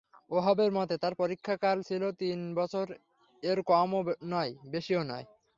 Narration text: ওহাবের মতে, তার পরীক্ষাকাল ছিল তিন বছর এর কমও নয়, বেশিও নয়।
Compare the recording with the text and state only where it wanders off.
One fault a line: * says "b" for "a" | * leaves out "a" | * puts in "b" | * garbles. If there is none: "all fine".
all fine